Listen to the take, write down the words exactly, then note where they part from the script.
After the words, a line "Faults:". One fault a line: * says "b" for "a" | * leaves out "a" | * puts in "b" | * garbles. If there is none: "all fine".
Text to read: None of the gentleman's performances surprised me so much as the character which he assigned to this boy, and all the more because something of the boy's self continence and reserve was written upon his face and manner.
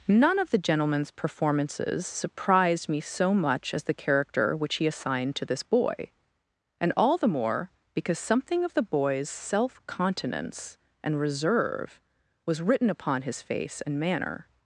None of the gentleman's performances surprised me so much as the character which he assigned to this boy, and all the more because something of the boy's self continence and reserve was written upon his face and manner.
Faults:
all fine